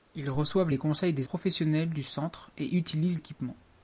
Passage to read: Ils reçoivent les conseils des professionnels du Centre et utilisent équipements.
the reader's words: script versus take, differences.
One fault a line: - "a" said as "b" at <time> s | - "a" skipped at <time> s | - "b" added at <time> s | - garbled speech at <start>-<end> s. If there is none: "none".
none